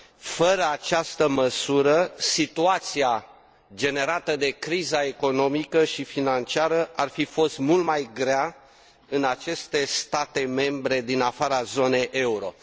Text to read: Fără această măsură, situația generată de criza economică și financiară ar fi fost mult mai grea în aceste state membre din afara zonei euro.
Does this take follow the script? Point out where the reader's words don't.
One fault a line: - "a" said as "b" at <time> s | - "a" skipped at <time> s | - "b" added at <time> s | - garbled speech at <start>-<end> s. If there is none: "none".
none